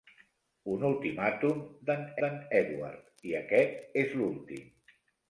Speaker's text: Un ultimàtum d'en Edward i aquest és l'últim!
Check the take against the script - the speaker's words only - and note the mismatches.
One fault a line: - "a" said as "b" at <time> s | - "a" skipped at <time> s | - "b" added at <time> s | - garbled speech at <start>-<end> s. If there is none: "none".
- "d'en" added at 2.2 s